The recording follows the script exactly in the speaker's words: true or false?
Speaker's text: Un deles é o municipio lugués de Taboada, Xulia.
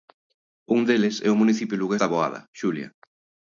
false